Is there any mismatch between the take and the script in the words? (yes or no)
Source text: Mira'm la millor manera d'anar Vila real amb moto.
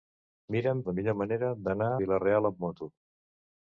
no